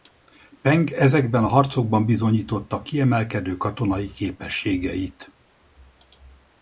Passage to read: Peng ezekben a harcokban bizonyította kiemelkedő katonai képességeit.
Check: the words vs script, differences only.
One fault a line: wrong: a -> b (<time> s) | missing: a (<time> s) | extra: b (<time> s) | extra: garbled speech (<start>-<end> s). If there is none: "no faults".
no faults